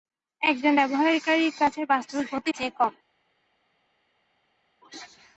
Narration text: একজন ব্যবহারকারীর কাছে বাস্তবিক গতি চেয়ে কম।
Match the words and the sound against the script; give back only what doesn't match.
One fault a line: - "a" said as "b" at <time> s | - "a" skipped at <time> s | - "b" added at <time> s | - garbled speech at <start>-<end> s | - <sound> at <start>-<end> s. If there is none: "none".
none